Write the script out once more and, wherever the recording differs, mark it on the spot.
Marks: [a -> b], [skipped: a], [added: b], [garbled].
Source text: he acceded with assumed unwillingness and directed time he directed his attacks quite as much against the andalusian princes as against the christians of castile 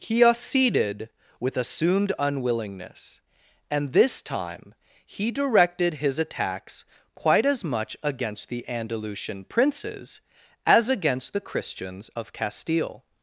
he acceded with assumed unwillingness and [directed -> this] time he directed his attacks quite as much against the andalusian princes as against the christians of castile